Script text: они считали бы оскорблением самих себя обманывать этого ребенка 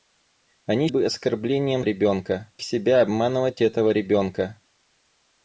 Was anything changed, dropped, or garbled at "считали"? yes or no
yes